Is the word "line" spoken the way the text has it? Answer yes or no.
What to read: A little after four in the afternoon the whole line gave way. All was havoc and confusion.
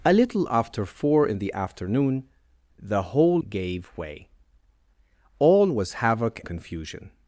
no